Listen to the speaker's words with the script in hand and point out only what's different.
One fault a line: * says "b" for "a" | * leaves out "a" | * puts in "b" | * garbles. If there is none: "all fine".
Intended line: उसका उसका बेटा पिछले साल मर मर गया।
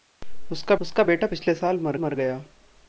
all fine